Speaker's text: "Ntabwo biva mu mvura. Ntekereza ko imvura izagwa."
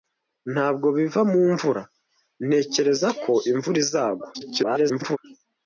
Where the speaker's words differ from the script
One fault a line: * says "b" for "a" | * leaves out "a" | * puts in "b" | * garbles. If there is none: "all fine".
* garbles